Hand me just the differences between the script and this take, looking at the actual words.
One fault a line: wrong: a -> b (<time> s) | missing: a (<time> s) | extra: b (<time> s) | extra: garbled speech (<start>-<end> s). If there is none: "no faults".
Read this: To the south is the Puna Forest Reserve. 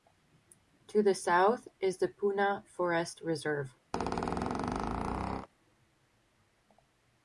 no faults